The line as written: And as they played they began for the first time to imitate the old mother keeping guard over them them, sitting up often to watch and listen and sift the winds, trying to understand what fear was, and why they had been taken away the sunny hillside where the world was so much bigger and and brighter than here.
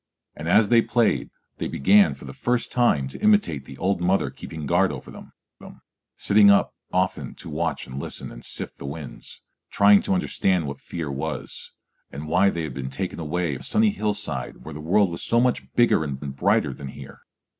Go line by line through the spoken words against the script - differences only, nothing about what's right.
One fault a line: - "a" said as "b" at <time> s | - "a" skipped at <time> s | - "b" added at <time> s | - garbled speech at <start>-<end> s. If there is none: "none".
none